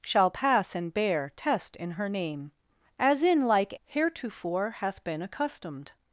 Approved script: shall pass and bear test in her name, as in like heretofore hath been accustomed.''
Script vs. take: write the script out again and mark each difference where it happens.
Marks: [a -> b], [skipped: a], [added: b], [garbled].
shall pass and bear test in her name, as in like heretofore hath been accustomed.''